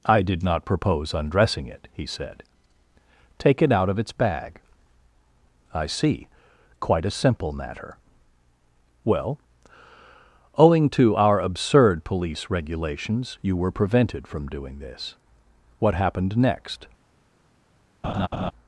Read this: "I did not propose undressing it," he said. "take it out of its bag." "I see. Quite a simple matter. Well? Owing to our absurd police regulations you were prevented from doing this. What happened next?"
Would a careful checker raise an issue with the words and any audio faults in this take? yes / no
yes